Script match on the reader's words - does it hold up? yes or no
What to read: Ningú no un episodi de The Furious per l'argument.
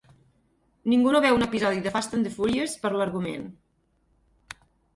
no